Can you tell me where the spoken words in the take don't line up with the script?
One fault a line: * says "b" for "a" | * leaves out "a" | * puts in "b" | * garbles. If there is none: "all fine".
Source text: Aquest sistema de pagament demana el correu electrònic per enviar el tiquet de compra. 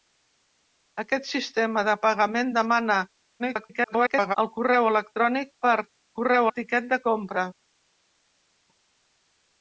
* garbles
* says "correu" for "enviar"